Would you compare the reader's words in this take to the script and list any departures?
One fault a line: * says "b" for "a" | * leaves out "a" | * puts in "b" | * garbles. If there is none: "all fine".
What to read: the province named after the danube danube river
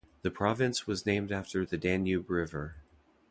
* puts in "was"
* leaves out "danube"